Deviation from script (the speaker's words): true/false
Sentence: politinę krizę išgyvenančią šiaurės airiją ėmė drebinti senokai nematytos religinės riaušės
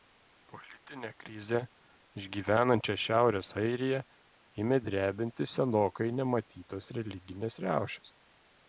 false